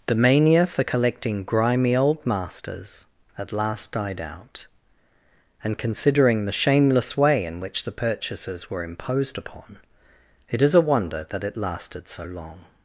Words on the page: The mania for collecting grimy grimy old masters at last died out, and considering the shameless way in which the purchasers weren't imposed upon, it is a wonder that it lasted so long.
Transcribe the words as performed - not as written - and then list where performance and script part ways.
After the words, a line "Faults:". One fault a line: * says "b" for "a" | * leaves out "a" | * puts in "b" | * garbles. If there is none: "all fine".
The mania for collecting grimy old masters at last died out, and considering the shameless way in which the purchasers were imposed upon, it is a wonder that it lasted so long.
Faults:
* leaves out "grimy"
* says "were" for "weren't"